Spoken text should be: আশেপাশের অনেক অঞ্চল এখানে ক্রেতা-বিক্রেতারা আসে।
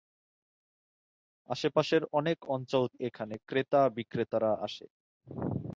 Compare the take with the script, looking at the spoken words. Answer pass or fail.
pass